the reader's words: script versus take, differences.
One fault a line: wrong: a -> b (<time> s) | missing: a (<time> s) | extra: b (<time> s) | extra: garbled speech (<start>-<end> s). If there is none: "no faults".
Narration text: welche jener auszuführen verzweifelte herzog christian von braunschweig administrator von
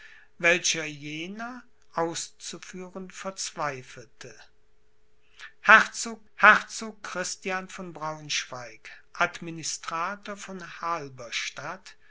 extra: herzog (6.3 s)